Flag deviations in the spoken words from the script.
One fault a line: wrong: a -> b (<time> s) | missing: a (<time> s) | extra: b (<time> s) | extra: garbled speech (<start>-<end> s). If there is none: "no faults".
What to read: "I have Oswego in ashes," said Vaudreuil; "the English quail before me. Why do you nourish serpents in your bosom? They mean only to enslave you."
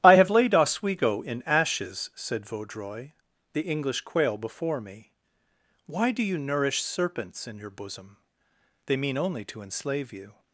extra: laid (0.3 s)